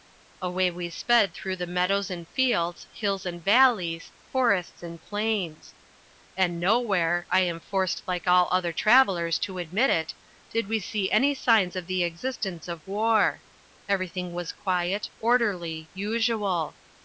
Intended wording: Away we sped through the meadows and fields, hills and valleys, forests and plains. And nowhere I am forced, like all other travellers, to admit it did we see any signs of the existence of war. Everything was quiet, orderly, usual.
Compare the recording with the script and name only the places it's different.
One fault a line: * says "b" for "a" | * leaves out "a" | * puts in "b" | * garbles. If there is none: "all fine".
all fine